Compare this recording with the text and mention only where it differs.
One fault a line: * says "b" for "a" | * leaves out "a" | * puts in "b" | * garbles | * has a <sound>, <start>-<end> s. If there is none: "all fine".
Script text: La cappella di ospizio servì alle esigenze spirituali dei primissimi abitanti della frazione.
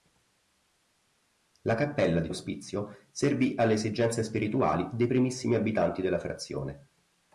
all fine